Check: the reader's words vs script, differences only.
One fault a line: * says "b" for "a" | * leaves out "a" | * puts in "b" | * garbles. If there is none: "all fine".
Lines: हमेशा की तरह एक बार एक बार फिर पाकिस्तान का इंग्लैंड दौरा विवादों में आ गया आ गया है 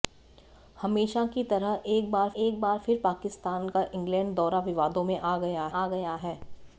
all fine